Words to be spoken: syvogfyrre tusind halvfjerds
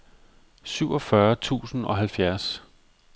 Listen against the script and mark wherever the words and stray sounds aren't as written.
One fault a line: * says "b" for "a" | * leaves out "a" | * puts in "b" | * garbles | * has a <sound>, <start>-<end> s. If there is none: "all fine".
* puts in "og"